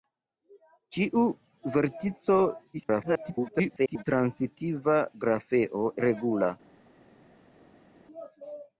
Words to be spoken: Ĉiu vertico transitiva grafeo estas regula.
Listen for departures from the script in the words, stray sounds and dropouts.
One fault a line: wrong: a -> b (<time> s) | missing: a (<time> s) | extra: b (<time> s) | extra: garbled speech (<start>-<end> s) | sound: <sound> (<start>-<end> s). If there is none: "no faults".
extra: garbled speech (2.7-4.0 s)
missing: estas (5.8 s)